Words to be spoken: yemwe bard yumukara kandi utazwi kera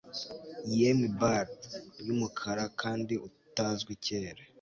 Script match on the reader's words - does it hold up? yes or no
yes